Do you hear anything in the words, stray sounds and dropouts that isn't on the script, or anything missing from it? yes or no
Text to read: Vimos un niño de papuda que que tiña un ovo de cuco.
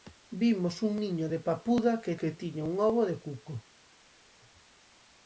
no